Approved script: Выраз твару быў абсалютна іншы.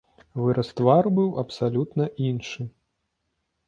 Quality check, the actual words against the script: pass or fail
pass